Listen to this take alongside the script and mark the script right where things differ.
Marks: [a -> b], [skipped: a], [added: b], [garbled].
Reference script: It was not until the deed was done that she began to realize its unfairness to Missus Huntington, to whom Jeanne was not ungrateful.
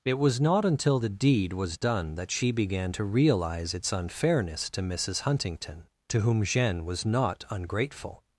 It was not until the deed was done that she began to realize its unfairness to Missus Huntington, to whom Jeanne was not ungrateful.